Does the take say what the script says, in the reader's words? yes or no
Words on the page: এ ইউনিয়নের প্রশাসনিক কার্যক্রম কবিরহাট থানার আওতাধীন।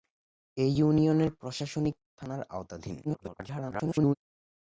no